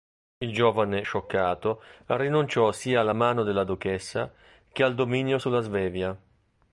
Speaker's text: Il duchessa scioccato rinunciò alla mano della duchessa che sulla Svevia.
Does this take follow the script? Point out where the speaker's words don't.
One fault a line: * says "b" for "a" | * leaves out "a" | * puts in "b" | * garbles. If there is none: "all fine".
* says "giovane" for "duchessa"
* puts in "sia"
* puts in "al dominio"